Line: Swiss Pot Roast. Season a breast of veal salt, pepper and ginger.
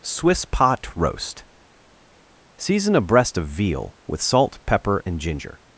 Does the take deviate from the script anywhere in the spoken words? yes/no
yes